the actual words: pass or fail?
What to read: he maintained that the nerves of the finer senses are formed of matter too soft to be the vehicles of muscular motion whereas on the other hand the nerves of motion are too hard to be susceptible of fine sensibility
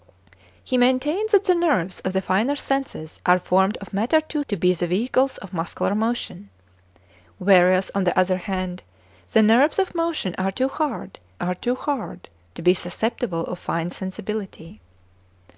fail